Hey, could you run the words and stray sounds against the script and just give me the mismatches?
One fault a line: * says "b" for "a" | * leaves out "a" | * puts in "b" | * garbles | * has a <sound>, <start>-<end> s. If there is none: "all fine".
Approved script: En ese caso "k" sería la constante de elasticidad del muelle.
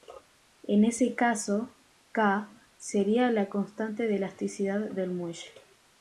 all fine